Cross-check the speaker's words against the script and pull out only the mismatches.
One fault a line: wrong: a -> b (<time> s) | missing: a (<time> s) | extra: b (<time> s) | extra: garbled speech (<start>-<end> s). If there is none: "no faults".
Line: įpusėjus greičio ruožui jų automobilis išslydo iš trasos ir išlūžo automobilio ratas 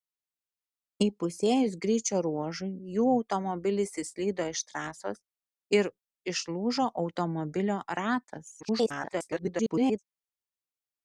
extra: garbled speech (8.6-10.0 s)